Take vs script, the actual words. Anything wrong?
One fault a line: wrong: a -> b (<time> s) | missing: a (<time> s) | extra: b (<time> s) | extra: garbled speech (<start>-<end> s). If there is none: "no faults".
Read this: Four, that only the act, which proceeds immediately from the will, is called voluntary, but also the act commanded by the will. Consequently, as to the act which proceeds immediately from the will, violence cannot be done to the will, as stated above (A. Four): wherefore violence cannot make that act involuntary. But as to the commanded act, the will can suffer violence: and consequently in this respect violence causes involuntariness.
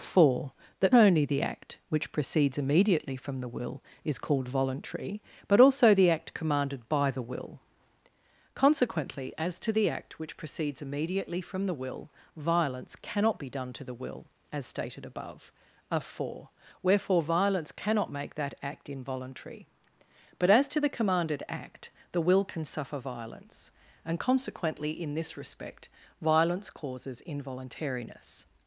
no faults